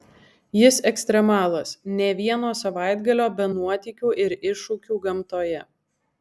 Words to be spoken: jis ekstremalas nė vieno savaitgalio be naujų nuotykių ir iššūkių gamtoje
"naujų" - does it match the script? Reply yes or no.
no